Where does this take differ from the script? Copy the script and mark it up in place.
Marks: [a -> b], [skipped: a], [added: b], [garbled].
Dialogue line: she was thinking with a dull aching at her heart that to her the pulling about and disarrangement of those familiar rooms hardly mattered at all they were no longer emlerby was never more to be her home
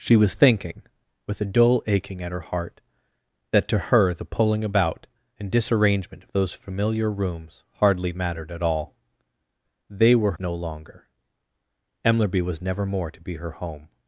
she was thinking with a dull aching at her heart that to her the pulling about and disarrangement of those familiar rooms hardly mattered at all they were no longer emlerby was never more to be her home